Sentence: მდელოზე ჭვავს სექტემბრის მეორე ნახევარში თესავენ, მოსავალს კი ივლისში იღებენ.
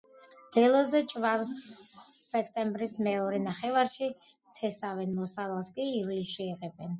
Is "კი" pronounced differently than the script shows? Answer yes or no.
no